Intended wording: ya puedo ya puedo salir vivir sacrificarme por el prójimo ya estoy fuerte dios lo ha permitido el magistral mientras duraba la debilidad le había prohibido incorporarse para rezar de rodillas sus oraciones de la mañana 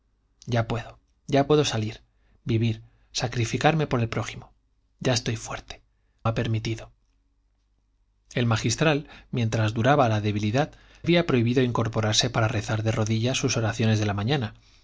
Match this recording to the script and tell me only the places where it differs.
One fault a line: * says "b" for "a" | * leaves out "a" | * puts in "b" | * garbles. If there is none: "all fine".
* leaves out "dios lo"
* leaves out "le"